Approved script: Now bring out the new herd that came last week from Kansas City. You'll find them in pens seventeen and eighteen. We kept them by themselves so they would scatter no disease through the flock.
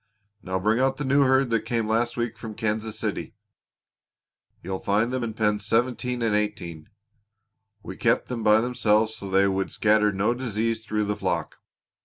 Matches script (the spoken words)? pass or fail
pass